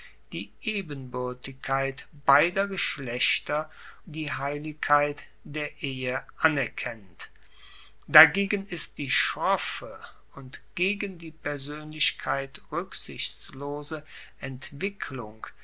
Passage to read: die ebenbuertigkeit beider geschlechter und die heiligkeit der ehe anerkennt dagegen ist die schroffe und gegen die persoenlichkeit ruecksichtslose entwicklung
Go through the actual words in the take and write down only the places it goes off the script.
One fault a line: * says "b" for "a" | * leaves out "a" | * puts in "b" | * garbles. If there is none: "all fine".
* leaves out "und"